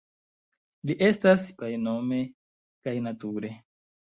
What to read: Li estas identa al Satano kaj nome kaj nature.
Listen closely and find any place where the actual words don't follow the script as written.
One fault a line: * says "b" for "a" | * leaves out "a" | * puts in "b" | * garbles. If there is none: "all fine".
* leaves out "identa al Satano"